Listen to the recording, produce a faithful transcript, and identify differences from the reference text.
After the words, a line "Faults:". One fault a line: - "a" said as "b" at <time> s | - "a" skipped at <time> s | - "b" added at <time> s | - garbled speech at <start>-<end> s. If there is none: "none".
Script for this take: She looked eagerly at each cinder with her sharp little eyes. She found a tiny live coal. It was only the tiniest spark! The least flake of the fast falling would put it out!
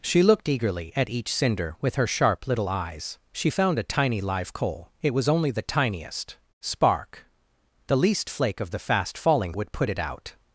She looked eagerly at each cinder with her sharp little eyes. She found a tiny live coal. It was only the tiniest spark! The least flake of the fast falling would put it out!
Faults:
none